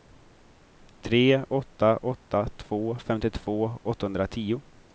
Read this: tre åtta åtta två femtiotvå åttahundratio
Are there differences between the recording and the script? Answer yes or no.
no